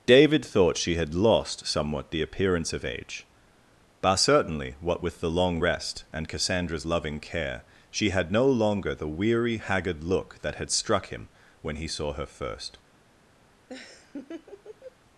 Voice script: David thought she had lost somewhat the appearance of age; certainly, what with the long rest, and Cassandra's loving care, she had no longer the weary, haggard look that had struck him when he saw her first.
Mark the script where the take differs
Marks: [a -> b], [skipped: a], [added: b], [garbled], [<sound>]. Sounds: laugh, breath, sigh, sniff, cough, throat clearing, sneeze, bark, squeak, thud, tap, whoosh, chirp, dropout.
David thought she had lost somewhat the appearance of age; [added: but] certainly, what with the long rest, and Cassandra's loving care, she had no longer the weary, haggard look that had struck him when he saw her first. [laugh]